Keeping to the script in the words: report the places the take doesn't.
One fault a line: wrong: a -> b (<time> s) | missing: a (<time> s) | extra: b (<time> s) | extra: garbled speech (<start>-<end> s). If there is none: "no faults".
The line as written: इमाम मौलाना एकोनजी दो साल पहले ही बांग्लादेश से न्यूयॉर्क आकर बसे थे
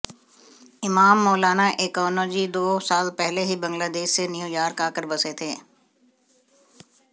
no faults